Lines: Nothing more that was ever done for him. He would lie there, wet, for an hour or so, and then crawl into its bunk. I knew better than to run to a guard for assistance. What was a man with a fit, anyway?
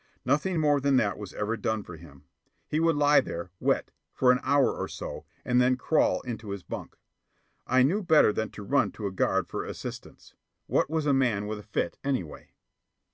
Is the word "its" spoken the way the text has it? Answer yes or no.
no